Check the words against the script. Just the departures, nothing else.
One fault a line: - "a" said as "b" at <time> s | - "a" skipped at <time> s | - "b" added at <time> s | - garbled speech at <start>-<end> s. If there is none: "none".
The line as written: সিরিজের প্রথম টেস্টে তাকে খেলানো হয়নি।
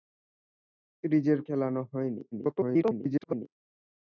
- "প্রথম টেস্টে তাকে" skipped at 1.4 s
- garbled speech at 2.3-3.5 s